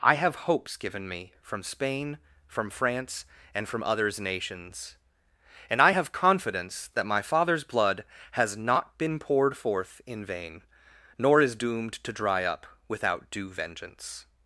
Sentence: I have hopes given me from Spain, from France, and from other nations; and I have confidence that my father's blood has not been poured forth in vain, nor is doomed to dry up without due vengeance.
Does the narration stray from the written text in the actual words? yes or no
yes